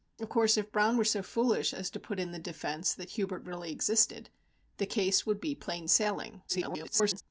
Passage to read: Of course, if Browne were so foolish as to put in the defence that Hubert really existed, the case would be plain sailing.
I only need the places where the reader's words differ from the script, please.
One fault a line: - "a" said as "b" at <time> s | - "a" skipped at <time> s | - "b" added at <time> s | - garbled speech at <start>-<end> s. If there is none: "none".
- garbled speech at 6.5-7.2 s